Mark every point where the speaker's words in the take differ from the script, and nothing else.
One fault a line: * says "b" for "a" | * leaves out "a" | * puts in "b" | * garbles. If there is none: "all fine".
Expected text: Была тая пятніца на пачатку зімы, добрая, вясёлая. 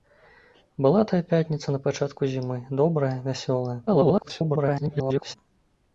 * garbles